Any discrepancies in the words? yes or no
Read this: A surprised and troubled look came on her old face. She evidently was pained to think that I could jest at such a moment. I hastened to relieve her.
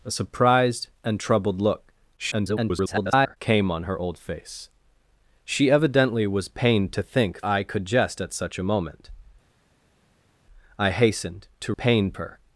yes